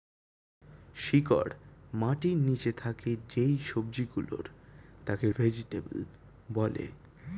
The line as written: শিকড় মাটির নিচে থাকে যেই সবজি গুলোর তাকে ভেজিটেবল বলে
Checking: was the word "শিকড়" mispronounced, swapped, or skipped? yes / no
no